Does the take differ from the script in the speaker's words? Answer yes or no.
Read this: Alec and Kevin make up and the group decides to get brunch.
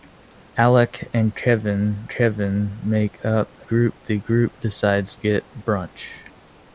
yes